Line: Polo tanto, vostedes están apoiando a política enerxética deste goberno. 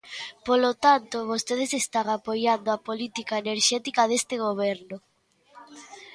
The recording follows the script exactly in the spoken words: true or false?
true